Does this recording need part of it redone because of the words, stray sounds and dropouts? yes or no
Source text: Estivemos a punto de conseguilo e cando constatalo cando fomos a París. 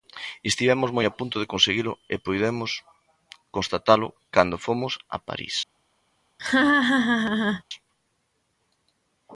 yes